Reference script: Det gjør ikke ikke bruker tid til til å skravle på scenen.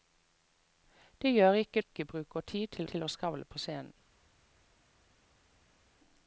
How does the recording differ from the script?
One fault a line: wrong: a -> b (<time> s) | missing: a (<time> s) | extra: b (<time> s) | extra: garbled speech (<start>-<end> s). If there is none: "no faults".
no faults